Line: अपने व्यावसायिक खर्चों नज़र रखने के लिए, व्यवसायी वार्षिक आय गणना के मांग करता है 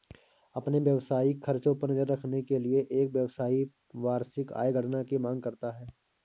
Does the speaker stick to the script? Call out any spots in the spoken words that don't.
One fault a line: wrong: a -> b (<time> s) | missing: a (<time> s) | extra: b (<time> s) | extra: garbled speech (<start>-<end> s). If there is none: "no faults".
extra: पर (1.8 s)
extra: एक (2.9 s)
wrong: के -> की (5.0 s)